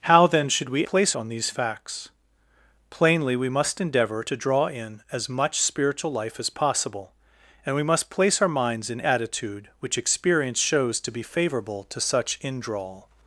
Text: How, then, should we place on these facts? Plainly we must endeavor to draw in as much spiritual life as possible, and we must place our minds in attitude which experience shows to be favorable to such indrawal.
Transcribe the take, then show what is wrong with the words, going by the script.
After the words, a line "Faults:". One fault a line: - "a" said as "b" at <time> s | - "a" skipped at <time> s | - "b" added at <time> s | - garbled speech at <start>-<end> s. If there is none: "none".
How, then, should we place on these facts? Plainly we must endeavor to draw in as much spiritual life as possible, and we must place our minds in attitude which experience shows to be favorable to such indrawal.
Faults:
none